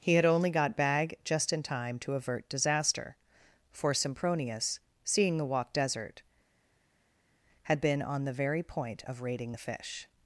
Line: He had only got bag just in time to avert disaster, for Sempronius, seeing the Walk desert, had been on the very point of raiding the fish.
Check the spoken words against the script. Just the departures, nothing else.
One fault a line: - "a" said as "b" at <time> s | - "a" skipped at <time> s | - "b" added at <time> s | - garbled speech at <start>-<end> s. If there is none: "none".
none